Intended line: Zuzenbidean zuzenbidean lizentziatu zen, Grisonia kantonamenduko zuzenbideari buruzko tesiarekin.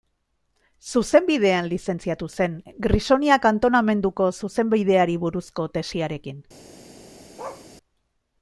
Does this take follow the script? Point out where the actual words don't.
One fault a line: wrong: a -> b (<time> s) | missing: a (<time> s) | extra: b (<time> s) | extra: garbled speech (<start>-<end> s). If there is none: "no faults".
missing: zuzenbidean (1.7 s)